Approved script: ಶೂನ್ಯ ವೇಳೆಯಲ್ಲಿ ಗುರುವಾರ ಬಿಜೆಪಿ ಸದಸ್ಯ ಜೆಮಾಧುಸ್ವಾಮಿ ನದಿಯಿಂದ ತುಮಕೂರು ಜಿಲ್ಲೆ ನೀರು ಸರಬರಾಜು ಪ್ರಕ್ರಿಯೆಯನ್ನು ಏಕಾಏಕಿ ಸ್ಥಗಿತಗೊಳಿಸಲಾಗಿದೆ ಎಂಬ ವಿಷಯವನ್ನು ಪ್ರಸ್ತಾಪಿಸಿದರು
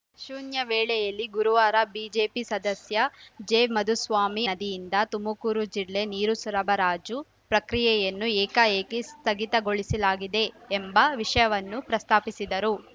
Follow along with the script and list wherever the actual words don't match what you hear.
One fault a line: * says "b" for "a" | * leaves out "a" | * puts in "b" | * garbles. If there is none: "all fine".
all fine